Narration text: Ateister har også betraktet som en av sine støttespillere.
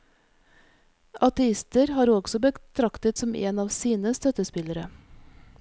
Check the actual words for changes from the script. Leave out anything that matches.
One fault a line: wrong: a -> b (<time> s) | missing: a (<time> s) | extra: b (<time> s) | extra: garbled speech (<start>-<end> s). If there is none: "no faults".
no faults